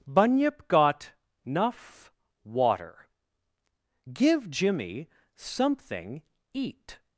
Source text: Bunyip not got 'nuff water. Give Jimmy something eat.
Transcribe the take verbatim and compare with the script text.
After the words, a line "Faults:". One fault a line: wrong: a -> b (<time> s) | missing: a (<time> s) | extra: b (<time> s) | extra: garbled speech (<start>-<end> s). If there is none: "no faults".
Bunyip got 'nuff water. Give Jimmy something eat.
Faults:
missing: not (0.7 s)